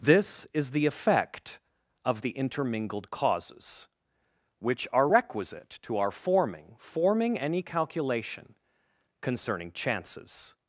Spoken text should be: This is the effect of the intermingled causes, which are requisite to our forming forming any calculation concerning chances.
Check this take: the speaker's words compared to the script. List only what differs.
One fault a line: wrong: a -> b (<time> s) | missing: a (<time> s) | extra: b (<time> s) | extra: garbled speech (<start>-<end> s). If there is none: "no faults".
no faults